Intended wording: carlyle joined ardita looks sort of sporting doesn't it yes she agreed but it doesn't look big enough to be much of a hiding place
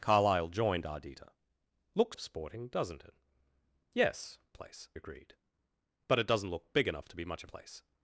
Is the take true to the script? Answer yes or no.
no